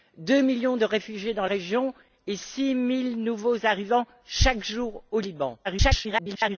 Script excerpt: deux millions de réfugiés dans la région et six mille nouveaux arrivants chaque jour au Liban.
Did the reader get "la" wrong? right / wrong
wrong